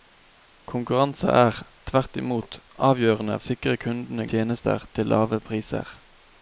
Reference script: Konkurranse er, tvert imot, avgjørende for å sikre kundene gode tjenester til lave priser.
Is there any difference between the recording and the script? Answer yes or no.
yes